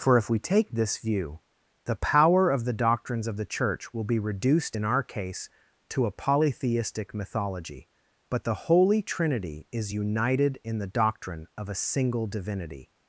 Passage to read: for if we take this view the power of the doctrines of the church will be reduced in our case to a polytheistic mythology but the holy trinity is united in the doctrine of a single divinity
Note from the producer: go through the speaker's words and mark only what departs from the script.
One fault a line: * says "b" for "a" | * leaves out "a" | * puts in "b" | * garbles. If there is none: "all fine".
all fine